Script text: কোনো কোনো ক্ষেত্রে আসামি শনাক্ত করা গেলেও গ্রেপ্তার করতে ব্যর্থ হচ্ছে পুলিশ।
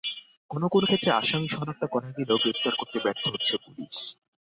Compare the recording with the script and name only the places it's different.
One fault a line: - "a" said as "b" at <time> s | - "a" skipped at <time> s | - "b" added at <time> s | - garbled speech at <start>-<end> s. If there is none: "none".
none